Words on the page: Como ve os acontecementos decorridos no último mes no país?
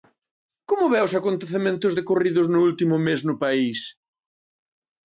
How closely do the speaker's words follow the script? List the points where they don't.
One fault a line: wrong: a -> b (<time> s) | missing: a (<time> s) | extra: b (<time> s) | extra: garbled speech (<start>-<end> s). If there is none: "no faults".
no faults